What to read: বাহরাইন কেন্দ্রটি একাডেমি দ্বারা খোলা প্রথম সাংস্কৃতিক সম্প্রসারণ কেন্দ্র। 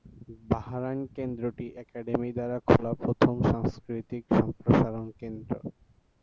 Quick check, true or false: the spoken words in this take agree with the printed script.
true